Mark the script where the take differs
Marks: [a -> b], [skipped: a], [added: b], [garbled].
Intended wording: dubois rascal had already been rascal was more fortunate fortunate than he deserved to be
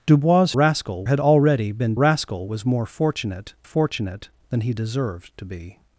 dubois rascal had already been rascal was more fortunate fortunate than he deserved to be